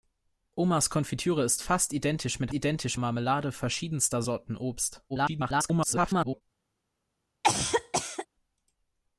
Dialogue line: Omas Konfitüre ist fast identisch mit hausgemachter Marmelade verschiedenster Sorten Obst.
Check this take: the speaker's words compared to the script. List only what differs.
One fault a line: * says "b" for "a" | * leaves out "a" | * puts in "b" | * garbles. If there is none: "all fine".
* says "identisch" for "hausgemachter"
* garbles